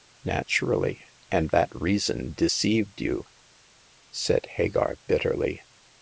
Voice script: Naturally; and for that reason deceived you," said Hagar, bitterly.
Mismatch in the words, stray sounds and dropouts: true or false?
true